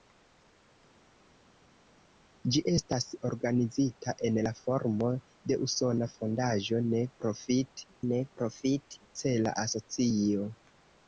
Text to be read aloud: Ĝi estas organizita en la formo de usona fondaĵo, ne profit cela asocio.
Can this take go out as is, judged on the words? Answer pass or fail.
fail